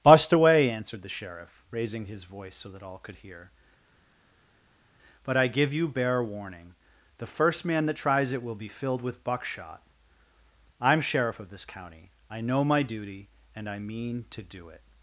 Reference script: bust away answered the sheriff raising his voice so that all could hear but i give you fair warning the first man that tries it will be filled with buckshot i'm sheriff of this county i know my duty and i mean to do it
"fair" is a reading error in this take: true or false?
true